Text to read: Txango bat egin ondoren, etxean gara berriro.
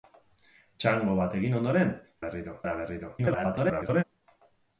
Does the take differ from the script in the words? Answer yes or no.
yes